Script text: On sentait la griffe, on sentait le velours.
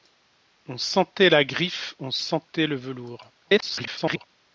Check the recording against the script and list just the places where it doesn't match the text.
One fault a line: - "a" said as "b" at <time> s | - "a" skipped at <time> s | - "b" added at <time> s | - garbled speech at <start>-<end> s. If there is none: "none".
- garbled speech at 3.4-4.3 s